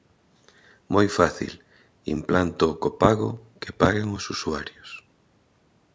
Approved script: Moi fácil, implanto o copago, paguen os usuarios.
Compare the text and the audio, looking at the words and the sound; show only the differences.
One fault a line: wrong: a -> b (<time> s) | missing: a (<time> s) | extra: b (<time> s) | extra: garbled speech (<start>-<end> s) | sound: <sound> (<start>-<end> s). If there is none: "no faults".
extra: que (3.6 s)